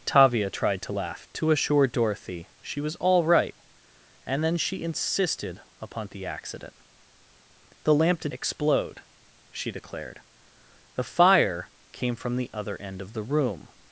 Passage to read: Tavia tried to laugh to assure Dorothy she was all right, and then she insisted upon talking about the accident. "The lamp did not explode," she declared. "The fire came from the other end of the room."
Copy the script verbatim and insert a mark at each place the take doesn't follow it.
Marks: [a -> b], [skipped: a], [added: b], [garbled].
Tavia tried to laugh to assure Dorothy she was all right, and then she insisted upon [skipped: talking about] the accident. "The lamp did [skipped: not] explode," she declared. "The fire came from the other end of the room."